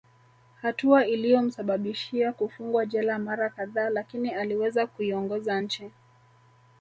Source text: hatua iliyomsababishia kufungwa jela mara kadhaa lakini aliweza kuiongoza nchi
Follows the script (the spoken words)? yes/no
yes